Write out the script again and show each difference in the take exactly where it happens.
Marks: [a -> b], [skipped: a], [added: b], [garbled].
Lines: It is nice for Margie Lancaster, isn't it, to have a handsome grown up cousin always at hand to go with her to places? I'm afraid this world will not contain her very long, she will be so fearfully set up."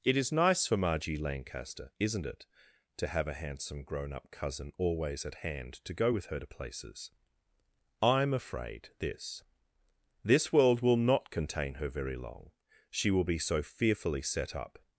It is nice for Margie Lancaster, isn't it, to have a handsome grown up cousin always at hand to go with her to places? I'm afraid this [added: this] world will not contain her very long, she will be so fearfully set up."